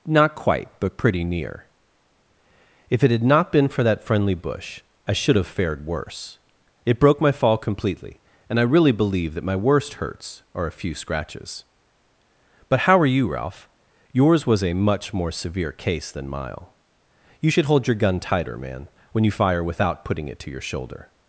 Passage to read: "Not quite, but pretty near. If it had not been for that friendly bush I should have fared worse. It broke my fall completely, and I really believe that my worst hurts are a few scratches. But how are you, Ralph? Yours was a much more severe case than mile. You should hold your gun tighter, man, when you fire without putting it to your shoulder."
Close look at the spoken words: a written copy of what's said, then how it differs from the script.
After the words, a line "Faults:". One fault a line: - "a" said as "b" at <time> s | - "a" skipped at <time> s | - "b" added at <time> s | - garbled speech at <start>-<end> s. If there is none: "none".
"Not quite, but pretty near. If it had not been for that friendly bush I should have fared worse. It broke my fall completely, and I really believe that my worst hurts are a few scratches. But how are you, Ralph? Yours was a much more severe case than mile. You should hold your gun tighter, man, when you fire without putting it to your shoulder."
Faults:
none